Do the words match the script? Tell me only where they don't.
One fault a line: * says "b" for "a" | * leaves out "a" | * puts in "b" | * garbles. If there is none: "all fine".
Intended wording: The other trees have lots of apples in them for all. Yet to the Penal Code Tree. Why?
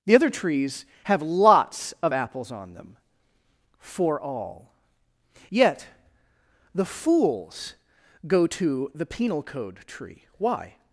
* says "on" for "in"
* puts in "the fools go"